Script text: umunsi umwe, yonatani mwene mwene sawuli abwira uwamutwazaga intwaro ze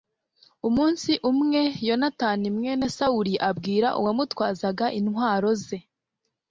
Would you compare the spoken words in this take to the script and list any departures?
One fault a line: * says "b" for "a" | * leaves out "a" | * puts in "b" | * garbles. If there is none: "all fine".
* leaves out "mwene"